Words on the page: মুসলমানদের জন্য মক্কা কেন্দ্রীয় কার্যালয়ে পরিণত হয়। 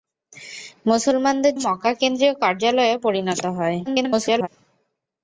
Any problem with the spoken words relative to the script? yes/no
yes